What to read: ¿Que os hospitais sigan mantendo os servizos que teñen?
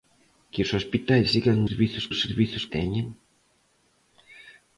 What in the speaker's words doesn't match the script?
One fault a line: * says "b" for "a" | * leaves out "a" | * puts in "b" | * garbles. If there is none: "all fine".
* says "servizos" for "mantendo"
* leaves out "que"